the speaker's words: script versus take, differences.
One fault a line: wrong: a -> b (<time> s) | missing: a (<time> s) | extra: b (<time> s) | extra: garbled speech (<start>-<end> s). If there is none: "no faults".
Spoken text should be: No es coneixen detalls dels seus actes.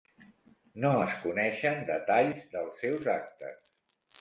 no faults